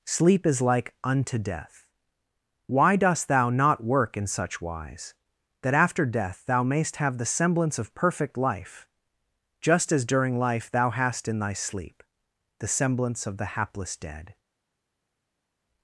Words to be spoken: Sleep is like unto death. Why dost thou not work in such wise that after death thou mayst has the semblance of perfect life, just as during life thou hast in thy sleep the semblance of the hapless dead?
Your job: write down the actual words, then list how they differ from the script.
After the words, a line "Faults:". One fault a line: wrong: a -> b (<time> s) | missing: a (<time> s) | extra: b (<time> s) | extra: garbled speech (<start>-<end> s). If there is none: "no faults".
Sleep is like unto death. Why dost thou not work in such wise that after death thou mayst have the semblance of perfect life, just as during life thou hast in thy sleep the semblance of the hapless dead?
Faults:
wrong: has -> have (7.0 s)